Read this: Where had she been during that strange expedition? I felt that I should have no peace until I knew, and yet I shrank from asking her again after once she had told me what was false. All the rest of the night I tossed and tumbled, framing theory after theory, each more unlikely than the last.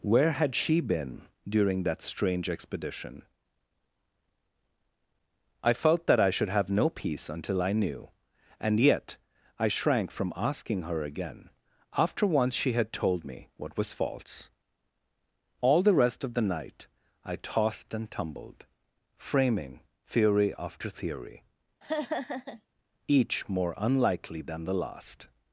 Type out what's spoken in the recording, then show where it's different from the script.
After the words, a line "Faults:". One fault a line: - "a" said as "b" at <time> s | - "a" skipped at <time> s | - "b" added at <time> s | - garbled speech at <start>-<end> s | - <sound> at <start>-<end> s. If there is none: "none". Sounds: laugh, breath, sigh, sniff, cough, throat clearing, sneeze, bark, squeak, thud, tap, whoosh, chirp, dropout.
Where had she been during that strange expedition? I felt that I should have no peace until I knew, and yet I shrank from asking her again after once she had told me what was false. All the rest of the night I tossed and tumbled, framing theory after theory, each more unlikely than the last.
Faults:
- laugh at 21.8-22.7 s